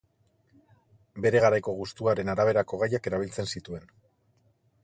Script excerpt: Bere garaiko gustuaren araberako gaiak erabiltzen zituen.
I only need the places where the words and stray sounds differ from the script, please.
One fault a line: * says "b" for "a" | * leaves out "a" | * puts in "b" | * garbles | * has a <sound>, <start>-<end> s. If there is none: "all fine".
all fine